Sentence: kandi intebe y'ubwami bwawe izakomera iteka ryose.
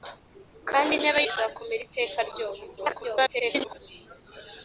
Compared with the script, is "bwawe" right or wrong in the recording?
wrong